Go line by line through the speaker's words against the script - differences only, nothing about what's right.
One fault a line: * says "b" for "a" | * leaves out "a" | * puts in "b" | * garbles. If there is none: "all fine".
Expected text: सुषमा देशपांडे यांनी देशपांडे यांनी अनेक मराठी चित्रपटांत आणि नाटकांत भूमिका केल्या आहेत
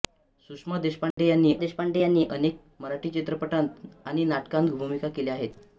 all fine